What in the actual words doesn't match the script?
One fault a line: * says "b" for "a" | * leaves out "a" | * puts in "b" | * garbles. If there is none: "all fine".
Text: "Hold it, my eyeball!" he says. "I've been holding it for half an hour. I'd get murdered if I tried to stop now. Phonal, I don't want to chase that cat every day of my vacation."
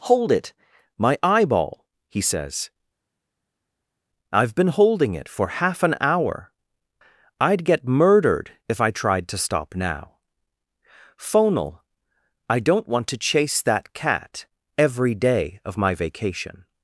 all fine